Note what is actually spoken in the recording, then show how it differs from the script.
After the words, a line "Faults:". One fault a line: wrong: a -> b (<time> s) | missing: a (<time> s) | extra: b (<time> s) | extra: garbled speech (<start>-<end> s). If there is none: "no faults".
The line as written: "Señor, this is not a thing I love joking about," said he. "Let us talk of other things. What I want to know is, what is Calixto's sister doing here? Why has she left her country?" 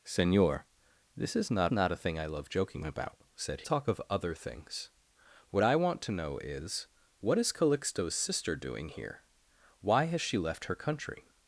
"Señor, this is not not a thing I love joking about," said talk of other things. What I want to know is, what is Calixto's sister doing here? Why has she left her country?"
Faults:
extra: not (1.7 s)
missing: he Let us (3.6 s)